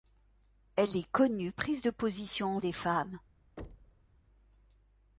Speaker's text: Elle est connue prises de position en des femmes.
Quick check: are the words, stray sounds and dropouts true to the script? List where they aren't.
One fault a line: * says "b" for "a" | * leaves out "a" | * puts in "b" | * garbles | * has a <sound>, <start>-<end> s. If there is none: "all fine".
* has a thud, 3.6-4.1 s